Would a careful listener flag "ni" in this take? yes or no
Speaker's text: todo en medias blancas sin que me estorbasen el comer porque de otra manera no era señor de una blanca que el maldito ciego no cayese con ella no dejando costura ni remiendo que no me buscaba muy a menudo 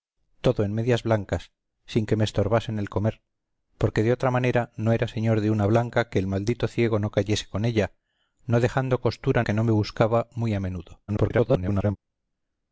yes